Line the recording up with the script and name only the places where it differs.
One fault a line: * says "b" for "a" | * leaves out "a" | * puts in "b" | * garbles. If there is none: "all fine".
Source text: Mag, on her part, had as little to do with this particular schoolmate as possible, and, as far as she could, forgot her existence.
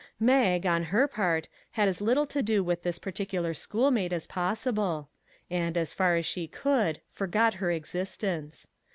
all fine